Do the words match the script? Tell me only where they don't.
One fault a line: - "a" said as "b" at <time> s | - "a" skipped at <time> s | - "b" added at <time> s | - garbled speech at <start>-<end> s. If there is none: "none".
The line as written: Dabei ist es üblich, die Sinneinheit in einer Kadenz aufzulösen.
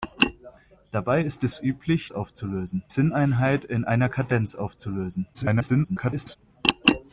- "die" said as "aufzulösen" at 2.1 s
- garbled speech at 5.3-6.4 s